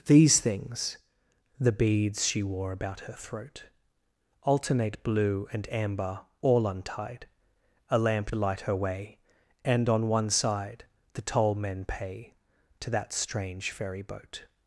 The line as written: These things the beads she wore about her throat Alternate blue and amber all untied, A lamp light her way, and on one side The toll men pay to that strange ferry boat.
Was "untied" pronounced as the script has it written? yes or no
yes